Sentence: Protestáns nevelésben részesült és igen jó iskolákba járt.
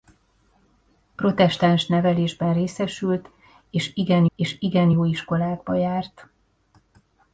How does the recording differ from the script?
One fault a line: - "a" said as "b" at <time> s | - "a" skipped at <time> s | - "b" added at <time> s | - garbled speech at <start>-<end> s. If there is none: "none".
- "és igen" added at 4.3 s